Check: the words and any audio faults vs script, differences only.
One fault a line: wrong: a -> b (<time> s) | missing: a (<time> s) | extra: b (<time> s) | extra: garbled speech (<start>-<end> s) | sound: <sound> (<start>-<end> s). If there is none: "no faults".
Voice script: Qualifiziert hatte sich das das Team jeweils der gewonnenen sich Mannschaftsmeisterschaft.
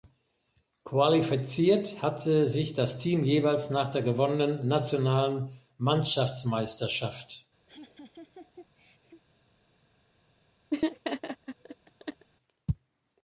missing: das (3.0 s)
extra: nach (3.7 s)
wrong: sich -> nationalen (4.7 s)
sound: laugh (7.7-9.2 s)
sound: laugh (10.7-12.3 s)